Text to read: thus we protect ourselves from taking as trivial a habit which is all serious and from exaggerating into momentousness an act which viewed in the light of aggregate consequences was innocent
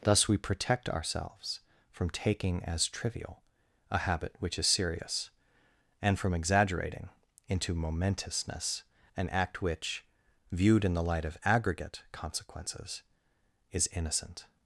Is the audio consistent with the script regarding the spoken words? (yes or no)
no